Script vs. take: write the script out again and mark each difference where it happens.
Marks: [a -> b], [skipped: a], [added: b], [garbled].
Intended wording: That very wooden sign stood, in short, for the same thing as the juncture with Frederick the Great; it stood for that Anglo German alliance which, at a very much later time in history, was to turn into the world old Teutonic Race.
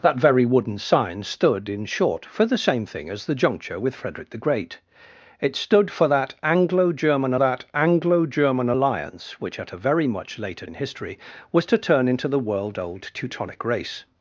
That very wooden sign stood, in short, for the same thing as the juncture with Frederick the Great; it stood for that Anglo German [added: that Anglo German] alliance which, at a very much later [skipped: time] in history, was to turn into the world old Teutonic Race.